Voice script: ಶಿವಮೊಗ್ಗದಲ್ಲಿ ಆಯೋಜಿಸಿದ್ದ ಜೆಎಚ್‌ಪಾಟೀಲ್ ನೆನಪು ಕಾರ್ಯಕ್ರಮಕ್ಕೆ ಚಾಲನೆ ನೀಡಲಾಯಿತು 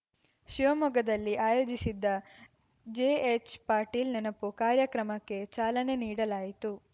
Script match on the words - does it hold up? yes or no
yes